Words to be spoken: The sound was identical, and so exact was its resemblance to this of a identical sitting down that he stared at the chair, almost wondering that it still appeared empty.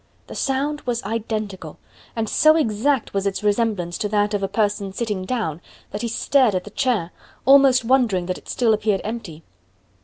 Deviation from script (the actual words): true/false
true